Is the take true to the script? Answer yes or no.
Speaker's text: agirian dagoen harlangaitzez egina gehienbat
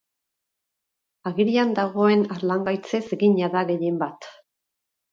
no